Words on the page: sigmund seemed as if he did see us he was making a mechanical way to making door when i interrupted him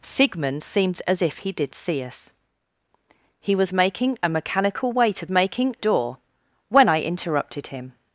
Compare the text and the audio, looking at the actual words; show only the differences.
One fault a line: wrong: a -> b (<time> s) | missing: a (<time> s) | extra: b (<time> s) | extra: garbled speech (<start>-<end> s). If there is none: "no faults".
no faults